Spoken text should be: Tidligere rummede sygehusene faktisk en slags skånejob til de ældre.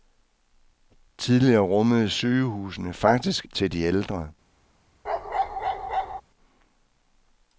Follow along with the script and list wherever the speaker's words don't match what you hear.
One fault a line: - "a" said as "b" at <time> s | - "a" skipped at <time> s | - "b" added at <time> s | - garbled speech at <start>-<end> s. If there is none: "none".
- "en slags skånejob" skipped at 3.5 s